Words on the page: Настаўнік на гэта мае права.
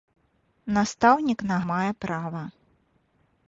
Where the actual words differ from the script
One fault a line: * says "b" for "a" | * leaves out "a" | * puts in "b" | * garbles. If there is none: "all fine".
* leaves out "гэта"